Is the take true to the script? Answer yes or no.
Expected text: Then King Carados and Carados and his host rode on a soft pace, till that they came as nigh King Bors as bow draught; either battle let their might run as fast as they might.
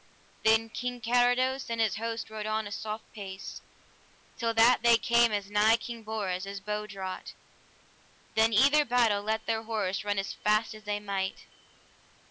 no